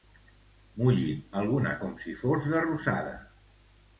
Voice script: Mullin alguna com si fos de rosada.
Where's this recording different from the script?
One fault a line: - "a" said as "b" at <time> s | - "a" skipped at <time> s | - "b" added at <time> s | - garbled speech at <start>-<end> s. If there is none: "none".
none